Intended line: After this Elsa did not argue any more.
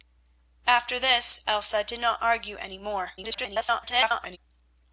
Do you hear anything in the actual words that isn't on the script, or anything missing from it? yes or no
yes